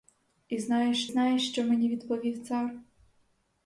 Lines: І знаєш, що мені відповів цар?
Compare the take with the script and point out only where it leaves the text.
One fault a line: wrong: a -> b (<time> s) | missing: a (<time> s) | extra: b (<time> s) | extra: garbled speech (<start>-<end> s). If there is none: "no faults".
extra: знаєш (1.1 s)